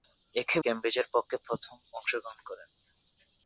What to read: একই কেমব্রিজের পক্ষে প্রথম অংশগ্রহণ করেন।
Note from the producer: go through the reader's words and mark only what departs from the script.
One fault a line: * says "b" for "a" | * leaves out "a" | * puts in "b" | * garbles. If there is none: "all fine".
all fine